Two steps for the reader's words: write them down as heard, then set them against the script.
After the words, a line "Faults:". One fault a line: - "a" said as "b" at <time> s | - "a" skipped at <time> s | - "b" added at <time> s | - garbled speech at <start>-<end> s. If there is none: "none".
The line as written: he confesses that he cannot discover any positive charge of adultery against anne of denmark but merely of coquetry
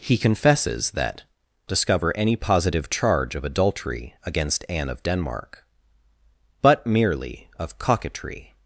he confesses that discover any positive charge of adultery against anne of denmark but merely of coquetry
Faults:
- "he cannot" skipped at 1.2 s